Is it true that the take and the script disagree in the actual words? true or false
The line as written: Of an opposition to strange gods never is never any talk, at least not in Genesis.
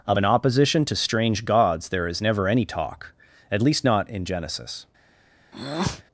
true